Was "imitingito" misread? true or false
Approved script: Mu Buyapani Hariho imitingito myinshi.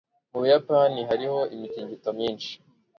false